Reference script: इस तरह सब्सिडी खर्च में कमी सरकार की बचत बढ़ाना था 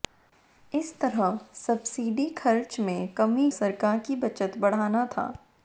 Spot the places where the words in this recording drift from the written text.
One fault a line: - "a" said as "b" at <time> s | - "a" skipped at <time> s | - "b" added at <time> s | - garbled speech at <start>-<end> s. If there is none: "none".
none